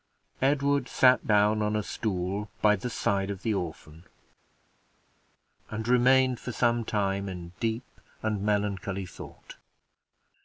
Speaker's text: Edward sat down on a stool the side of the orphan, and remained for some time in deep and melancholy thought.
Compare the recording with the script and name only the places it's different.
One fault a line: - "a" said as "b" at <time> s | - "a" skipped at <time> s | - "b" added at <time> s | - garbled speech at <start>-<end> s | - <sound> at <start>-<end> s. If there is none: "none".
- "by" added at 2.6 s